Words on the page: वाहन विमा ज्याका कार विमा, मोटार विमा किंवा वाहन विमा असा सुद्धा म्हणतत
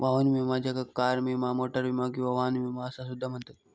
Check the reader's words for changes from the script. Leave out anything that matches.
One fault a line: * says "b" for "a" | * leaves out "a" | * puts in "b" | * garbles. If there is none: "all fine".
all fine